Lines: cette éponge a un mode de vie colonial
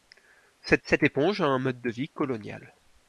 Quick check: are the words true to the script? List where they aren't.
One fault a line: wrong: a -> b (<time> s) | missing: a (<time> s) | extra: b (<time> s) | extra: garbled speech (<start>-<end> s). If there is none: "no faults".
extra: cette (0.8 s)